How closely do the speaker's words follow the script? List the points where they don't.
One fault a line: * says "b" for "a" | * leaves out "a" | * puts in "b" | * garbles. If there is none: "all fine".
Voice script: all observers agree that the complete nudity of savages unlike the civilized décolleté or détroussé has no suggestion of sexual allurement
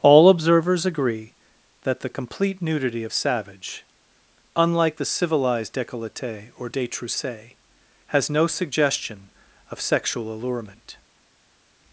* says "savage" for "savages"